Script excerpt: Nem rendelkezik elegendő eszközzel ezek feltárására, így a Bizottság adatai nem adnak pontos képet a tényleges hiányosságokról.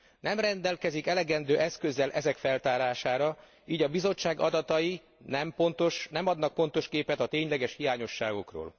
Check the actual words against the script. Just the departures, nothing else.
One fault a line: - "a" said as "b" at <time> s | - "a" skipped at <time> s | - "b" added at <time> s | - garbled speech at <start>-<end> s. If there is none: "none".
none